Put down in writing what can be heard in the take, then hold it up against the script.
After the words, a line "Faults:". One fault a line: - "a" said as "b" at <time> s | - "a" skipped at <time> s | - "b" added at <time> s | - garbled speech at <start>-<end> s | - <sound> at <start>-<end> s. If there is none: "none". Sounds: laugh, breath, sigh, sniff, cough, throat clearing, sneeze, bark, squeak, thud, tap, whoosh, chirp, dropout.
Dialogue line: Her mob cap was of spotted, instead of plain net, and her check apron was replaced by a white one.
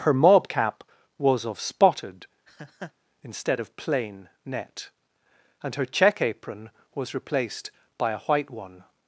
Her mob cap was of spotted, instead of plain net, and her check apron was replaced by a white one.
Faults:
- laugh at 2.5-2.9 s